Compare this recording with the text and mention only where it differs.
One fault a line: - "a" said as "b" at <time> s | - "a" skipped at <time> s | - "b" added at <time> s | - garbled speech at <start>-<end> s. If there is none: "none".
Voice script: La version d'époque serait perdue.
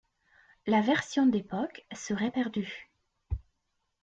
none